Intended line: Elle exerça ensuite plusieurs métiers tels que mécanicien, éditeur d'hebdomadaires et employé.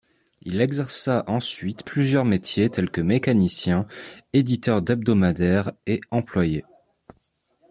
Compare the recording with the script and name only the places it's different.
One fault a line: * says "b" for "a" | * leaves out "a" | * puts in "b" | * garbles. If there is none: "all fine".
* says "Il" for "Elle"